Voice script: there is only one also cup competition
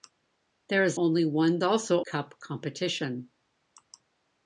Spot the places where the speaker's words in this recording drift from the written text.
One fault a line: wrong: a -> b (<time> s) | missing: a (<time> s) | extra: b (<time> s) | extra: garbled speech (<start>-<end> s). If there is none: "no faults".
no faults